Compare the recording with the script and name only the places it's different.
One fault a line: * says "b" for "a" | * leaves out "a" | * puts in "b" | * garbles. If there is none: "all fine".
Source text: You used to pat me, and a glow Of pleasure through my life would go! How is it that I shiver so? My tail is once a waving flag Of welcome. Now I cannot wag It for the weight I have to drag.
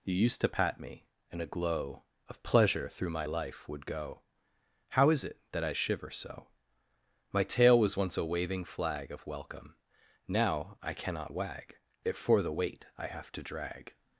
* says "was" for "is"